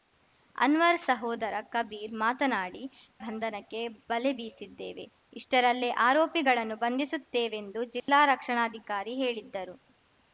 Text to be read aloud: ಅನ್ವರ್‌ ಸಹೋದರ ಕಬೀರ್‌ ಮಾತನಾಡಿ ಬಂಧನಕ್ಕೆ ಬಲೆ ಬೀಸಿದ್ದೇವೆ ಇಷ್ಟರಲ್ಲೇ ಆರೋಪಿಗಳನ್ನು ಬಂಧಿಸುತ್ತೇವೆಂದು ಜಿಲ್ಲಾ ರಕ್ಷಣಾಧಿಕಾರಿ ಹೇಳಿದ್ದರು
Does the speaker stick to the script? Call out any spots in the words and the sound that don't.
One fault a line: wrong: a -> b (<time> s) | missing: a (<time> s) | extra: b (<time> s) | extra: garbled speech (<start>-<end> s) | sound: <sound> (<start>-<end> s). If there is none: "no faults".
sound: dropout (8.0-8.1 s)